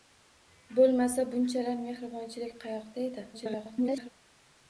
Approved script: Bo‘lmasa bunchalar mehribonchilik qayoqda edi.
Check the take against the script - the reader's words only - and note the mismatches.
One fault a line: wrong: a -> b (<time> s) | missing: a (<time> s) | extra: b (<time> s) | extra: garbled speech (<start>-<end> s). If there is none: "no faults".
extra: garbled speech (3.3-4.1 s)